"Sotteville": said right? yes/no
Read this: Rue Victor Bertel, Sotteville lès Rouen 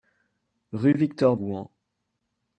no